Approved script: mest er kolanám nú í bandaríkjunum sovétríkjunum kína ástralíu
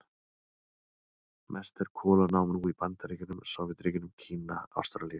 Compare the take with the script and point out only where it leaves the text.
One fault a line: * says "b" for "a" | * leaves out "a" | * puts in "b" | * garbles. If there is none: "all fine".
all fine